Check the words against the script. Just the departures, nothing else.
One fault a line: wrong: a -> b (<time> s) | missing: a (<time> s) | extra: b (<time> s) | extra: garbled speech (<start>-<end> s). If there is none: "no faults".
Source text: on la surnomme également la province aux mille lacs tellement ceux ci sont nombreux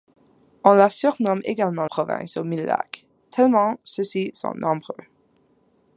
missing: la (1.9 s)